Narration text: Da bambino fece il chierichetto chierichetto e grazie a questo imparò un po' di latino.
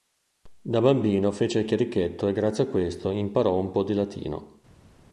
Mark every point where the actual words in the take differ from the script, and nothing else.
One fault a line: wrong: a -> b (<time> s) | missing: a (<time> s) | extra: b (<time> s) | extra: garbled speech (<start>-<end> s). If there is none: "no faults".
missing: chierichetto (2.3 s)